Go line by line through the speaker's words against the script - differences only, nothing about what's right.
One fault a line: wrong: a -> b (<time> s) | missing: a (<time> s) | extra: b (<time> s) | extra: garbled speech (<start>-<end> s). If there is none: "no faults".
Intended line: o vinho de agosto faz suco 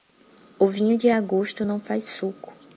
extra: não (1.6 s)